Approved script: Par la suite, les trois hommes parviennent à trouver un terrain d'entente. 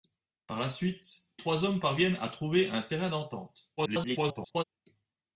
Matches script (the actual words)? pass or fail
fail